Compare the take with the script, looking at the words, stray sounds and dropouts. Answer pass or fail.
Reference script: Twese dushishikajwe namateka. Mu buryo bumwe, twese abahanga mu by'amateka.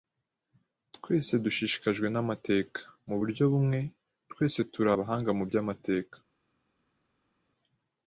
fail